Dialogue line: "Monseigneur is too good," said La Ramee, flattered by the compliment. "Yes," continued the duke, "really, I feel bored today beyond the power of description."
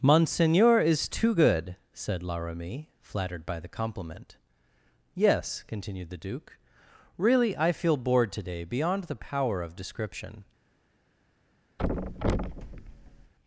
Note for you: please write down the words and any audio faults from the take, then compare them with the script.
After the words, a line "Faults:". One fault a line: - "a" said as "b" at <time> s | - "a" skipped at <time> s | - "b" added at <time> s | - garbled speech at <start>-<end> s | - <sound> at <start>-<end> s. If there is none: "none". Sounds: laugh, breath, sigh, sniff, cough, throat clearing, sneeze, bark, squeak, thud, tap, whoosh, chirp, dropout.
"Monseigneur is too good," said La Ramee, flattered by the compliment. "Yes," continued the duke, "really, I feel bored today beyond the power of description."
Faults:
- thud at 11.8-13.3 s